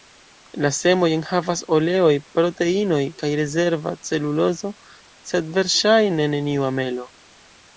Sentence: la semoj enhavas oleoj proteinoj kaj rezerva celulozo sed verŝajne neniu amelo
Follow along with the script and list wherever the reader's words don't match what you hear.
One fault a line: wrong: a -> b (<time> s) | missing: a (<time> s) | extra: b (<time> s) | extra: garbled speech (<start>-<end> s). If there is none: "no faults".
no faults